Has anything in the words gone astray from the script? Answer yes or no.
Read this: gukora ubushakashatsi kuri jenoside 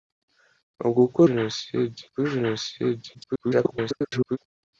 yes